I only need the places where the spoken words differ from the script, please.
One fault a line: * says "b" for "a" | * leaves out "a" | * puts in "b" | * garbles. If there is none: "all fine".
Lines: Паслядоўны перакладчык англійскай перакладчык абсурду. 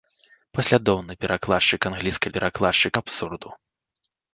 all fine